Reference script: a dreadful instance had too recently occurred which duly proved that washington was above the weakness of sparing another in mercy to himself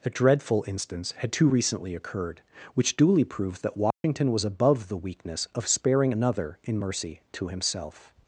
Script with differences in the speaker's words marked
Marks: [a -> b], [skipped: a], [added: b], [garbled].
a dreadful instance had too recently occurred which duly proved that washington was above the weakness of sparing another in mercy to himself